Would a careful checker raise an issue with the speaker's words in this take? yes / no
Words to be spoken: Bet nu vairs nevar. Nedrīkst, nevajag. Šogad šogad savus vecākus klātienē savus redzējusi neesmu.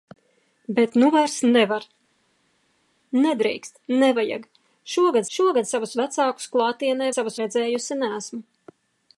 no